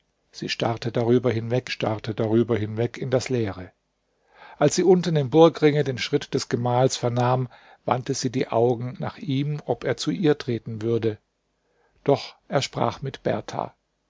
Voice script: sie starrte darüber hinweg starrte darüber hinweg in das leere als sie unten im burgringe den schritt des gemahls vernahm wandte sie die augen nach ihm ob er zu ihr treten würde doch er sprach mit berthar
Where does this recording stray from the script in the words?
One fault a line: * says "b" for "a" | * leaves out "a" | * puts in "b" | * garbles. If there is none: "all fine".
all fine